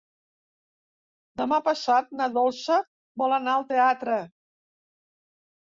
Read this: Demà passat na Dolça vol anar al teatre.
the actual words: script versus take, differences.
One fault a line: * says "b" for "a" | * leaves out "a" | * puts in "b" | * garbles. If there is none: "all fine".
all fine